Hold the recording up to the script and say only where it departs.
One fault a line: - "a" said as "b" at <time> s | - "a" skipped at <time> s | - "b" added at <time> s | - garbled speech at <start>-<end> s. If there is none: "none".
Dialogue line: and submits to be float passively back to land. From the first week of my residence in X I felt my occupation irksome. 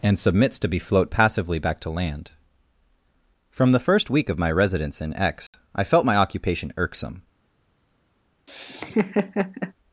none